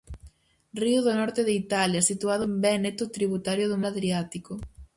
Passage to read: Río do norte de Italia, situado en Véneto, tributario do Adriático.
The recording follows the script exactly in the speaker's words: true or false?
true